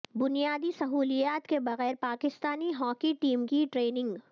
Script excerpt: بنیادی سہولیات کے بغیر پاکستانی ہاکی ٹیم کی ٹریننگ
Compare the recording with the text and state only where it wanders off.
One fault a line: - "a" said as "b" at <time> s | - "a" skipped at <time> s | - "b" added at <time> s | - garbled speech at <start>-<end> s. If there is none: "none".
none